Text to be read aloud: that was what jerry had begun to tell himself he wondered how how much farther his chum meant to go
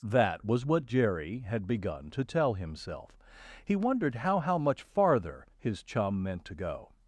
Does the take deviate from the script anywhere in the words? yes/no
no